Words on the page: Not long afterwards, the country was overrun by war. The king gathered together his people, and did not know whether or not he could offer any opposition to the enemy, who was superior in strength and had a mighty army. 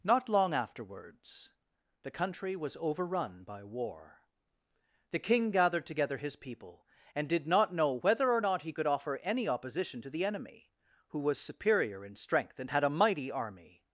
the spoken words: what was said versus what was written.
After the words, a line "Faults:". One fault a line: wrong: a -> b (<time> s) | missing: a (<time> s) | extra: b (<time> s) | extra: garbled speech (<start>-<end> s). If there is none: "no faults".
Not long afterwards, the country was overrun by war. The king gathered together his people, and did not know whether or not he could offer any opposition to the enemy, who was superior in strength and had a mighty army.
Faults:
no faults